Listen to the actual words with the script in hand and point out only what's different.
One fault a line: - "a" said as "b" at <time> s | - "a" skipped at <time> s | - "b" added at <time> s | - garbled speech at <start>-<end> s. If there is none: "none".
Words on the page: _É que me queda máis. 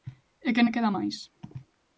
none